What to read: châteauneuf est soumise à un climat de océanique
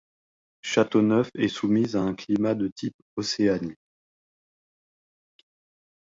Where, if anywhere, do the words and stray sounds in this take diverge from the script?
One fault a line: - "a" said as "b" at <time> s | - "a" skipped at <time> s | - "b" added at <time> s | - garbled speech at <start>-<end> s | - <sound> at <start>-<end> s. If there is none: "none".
- "type" added at 2.7 s